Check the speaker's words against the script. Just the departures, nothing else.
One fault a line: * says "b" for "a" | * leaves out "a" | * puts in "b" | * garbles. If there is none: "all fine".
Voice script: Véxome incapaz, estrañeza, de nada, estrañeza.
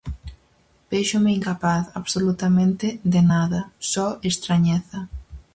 * says "absolutamente" for "estrañeza"
* puts in "só"